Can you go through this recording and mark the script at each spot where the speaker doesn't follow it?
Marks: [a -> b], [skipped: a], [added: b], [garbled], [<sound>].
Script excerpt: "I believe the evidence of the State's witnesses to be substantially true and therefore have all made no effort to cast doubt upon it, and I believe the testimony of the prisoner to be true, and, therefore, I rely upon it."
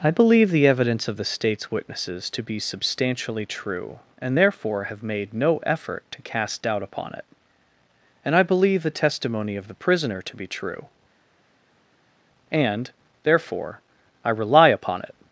"I believe the evidence of the State's witnesses to be substantially true and therefore have [skipped: all] made no effort to cast doubt upon it, and I believe the testimony of the prisoner to be true, and, therefore, I rely upon it."